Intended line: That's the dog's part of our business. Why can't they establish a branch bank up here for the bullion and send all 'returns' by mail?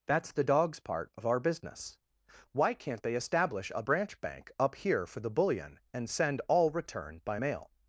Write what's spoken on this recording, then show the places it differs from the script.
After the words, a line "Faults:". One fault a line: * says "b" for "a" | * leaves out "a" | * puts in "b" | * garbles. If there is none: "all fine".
That's the dog's part of our business. Why can't they establish a branch bank up here for the bullion and send all 'return' by mail?
Faults:
* says "return" for "returns"